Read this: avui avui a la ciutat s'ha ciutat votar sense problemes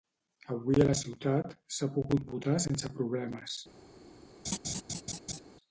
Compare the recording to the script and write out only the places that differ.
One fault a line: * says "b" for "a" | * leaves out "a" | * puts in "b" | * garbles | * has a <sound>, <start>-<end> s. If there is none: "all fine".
* leaves out "avui"
* says "pogut" for "ciutat"
* has a laugh, 4.4-5.4 s